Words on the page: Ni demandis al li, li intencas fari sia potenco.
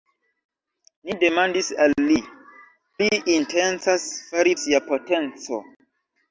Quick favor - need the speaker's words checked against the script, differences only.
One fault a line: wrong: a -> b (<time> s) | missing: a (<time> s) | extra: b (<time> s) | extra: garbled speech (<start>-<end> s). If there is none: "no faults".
no faults